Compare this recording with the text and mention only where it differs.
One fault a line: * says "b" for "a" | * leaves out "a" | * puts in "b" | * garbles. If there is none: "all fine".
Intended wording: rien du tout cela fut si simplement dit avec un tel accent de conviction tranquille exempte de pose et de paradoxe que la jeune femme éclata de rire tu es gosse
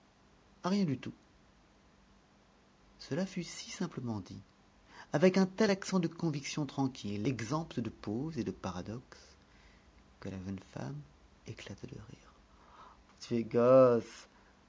all fine